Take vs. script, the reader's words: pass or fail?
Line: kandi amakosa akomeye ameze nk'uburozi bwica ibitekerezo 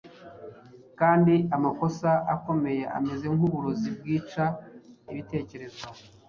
pass